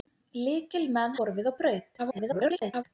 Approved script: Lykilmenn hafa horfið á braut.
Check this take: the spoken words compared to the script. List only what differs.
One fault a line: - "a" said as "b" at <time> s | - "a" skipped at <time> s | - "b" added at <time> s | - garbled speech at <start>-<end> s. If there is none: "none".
- "hafa" skipped at 1.1 s
- garbled speech at 2.0-2.8 s